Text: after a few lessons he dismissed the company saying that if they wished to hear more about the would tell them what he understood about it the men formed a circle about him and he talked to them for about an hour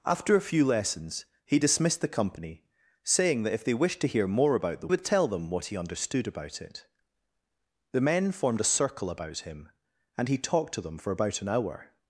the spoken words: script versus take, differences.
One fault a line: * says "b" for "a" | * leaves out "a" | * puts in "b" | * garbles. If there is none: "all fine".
all fine